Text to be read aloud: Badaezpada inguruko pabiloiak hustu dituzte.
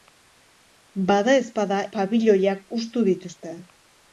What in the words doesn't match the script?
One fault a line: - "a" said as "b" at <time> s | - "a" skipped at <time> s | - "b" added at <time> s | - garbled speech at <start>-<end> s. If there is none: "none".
- "inguruko" skipped at 1.8 s